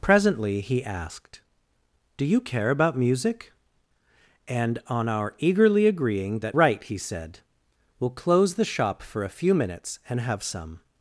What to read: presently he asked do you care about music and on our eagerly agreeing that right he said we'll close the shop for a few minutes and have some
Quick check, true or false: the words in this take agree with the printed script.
true